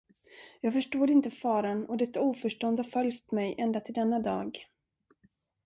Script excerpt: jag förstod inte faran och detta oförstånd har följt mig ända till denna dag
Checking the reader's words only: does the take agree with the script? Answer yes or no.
yes